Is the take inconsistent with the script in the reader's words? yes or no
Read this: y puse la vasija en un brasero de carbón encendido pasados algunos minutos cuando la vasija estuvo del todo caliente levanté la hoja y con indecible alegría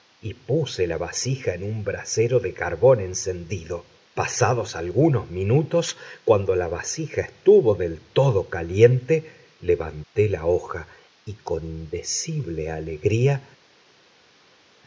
no